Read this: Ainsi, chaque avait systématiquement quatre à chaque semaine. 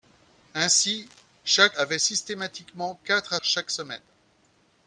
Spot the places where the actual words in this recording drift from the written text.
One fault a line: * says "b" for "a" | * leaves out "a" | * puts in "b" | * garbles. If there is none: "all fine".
all fine